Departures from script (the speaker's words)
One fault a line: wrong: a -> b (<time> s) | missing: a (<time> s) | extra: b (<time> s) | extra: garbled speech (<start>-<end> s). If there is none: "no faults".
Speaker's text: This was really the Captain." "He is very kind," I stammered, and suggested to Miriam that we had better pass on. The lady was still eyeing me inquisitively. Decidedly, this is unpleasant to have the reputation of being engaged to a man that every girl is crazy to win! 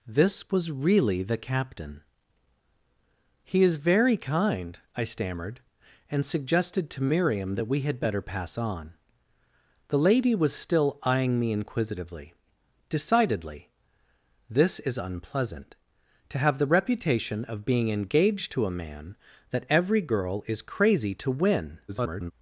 extra: garbled speech (21.9-22.3 s)